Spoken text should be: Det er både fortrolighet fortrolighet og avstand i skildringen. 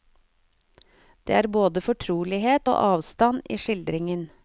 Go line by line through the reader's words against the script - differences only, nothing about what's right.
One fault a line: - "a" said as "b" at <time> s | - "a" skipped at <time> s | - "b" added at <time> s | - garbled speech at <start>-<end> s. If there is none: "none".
- "fortrolighet" skipped at 2.7 s